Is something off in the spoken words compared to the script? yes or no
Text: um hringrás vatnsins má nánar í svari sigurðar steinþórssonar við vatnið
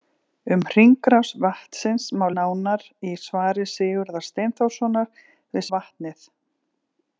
no